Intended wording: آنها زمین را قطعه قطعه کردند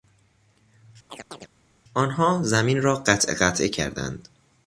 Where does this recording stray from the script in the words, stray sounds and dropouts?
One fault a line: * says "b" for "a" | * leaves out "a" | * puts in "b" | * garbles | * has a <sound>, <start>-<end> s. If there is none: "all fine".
* has a chirp, 1.1-1.5 s